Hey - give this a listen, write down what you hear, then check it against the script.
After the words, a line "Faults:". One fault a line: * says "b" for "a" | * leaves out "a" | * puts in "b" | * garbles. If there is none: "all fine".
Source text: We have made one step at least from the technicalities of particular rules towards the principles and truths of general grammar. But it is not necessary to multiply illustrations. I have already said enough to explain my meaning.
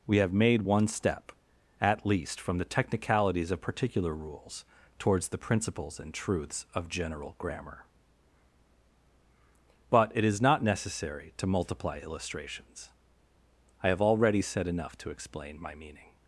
We have made one step at least from the technicalities of particular rules towards the principles and truths of general grammar. But it is not necessary to multiply illustrations. I have already said enough to explain my meaning.
Faults:
all fine